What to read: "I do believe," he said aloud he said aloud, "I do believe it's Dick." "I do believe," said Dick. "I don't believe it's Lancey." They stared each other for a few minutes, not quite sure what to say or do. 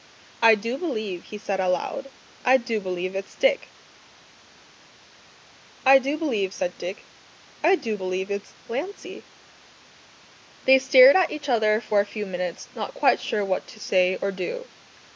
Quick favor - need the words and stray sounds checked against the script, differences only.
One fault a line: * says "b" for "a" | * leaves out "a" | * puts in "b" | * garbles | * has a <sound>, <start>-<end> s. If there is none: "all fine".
* leaves out "he said aloud"
* says "do" for "don't"
* puts in "at"